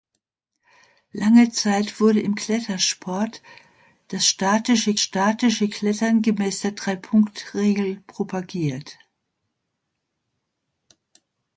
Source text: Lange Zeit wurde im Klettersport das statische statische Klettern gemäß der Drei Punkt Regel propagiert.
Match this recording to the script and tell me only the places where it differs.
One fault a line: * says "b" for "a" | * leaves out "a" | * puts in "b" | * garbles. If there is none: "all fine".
all fine